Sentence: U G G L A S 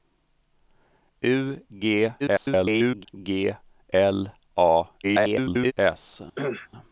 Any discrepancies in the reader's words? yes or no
yes